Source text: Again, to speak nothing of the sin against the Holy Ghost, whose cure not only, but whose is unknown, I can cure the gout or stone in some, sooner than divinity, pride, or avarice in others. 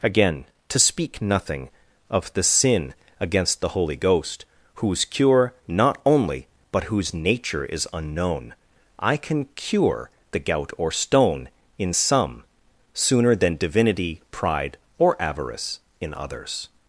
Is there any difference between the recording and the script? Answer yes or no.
yes